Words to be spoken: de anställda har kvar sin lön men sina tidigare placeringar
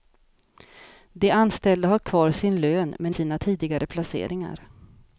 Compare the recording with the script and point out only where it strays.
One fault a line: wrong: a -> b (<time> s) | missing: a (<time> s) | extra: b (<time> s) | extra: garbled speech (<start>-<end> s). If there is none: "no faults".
no faults